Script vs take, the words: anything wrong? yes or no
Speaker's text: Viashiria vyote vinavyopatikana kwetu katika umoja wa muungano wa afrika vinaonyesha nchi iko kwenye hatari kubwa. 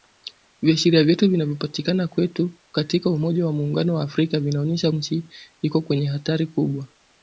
no